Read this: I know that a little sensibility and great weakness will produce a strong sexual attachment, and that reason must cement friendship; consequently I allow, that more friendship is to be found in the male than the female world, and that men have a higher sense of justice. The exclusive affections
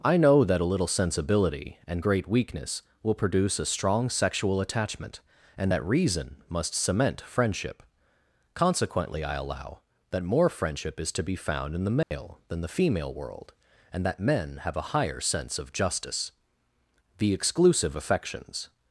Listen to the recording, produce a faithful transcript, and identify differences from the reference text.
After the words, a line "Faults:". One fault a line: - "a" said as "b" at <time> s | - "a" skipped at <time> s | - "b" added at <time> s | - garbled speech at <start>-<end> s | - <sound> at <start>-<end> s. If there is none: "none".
I know that a little sensibility and great weakness will produce a strong sexual attachment, and that reason must cement friendship; consequently I allow, that more friendship is to be found in the male than the female world, and that men have a higher sense of justice. The exclusive affections
Faults:
- dropout at 12.0-12.1 s